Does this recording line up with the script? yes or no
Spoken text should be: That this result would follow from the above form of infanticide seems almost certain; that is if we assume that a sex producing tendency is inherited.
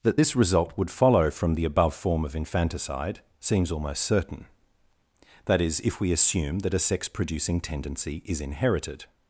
yes